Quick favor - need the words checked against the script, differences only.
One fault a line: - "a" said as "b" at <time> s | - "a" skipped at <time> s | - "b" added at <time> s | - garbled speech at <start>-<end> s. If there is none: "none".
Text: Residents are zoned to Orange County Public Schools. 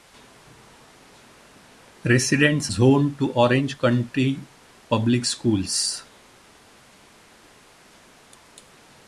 - "are" skipped at 2.7 s